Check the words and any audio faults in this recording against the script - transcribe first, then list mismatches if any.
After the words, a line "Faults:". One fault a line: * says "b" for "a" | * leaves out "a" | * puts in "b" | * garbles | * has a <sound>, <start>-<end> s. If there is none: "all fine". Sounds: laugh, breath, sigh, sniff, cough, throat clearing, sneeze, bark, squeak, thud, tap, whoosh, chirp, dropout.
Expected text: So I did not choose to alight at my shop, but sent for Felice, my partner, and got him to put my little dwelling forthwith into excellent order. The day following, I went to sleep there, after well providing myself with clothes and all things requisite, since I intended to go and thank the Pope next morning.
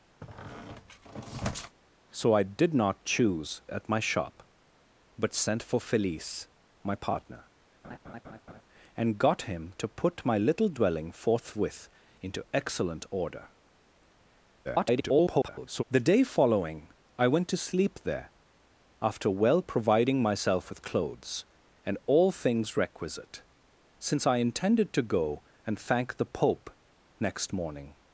So I did not choose at my shop, but sent for Felice, my partner, and got him to put my little dwelling forthwith into excellent order. [garbled] The day following, I went to sleep there, after well providing myself with clothes and all things requisite, since I intended to go and thank the Pope next morning.
Faults:
* has a squeak, 0.2-1.8 s
* leaves out "to alight"
* has a laugh, 7.8-8.6 s
* garbles